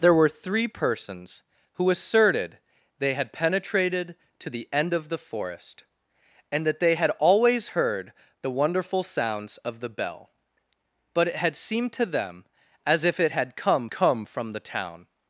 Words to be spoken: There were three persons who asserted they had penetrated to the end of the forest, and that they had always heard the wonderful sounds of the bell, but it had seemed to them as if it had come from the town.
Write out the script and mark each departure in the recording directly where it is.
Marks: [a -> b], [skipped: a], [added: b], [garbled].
There were three persons who asserted they had penetrated to the end of the forest, and that they had always heard the wonderful sounds of the bell, but it had seemed to them as if it had come [added: come] from the town.